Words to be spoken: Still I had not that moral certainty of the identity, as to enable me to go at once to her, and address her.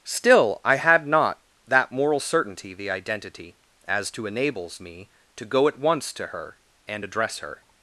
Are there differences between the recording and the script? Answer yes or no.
yes